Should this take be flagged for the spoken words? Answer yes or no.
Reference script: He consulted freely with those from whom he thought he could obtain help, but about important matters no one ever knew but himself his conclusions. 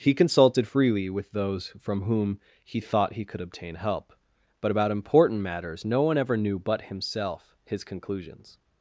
no